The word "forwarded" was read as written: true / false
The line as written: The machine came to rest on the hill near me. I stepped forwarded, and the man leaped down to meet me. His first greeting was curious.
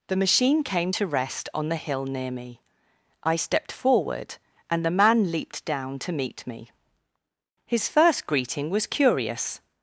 false